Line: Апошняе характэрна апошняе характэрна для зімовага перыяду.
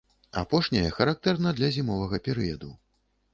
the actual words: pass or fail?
fail